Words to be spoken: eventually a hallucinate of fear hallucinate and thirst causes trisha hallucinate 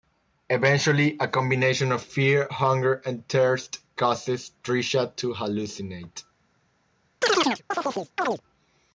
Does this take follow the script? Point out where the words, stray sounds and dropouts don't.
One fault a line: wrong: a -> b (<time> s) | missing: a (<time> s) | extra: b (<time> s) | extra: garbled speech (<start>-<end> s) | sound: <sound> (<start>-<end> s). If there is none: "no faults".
wrong: hallucinate -> combination (1.3 s)
wrong: hallucinate -> hunger (2.5 s)
extra: to (5.2 s)
sound: chirp (7.2-8.4 s)